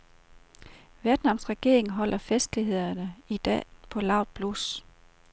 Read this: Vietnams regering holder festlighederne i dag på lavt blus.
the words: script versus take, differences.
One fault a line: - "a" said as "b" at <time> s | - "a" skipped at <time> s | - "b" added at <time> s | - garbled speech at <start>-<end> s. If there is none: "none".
none